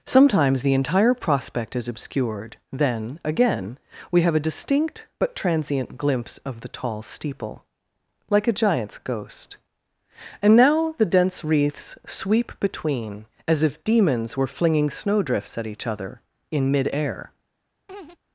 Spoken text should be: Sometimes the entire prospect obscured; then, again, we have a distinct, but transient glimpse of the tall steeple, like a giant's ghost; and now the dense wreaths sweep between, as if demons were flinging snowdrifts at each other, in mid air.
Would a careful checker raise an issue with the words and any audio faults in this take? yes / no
yes